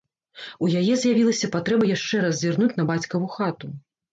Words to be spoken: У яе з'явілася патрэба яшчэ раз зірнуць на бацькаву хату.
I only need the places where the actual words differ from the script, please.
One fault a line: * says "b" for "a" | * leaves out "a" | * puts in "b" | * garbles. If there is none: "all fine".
all fine